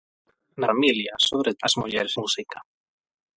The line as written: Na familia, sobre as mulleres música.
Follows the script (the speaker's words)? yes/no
yes